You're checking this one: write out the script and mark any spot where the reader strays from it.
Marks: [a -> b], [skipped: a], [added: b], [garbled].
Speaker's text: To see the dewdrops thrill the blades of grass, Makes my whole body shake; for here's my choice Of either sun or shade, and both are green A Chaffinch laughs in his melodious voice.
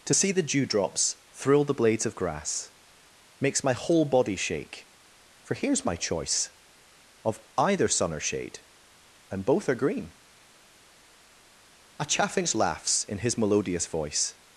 To see the dewdrops thrill the blades of grass, Makes my whole body shake; for here's my choice Of either sun or shade, and both are green A Chaffinch laughs in his melodious voice.